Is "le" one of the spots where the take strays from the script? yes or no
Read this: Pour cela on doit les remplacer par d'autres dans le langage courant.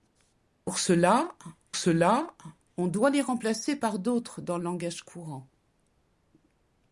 yes